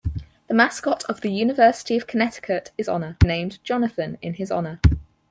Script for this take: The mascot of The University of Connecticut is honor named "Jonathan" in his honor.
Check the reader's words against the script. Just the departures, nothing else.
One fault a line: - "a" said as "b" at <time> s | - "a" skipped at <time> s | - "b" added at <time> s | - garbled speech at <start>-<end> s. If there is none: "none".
none